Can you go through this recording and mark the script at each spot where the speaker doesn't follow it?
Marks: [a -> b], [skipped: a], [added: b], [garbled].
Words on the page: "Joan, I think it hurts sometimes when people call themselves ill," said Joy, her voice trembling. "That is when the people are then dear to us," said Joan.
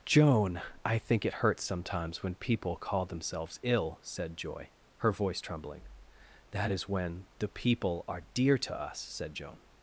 "Joan, I think it hurts sometimes when people call themselves ill," said Joy, her voice trembling. "That is when the people are [skipped: then] dear to us," said Joan.